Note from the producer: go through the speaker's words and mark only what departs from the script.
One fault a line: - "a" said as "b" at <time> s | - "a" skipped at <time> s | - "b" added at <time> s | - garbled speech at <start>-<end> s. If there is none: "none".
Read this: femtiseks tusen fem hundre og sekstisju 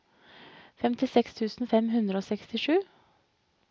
none